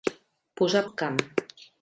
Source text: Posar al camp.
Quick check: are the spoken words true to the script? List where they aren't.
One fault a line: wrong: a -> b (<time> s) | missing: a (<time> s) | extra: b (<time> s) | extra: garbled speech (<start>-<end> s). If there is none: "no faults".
no faults